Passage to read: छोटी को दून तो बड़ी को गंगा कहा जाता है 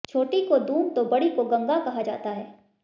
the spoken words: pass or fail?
pass